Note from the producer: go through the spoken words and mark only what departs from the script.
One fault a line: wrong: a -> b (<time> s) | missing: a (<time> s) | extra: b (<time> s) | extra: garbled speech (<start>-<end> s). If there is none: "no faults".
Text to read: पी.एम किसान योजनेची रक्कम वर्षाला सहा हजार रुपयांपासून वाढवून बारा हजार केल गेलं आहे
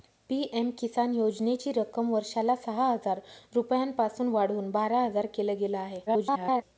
extra: garbled speech (6.1-6.6 s)